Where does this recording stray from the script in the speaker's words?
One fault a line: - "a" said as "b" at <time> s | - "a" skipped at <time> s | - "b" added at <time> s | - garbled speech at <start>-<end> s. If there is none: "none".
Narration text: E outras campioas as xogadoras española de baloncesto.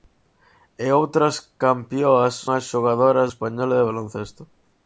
none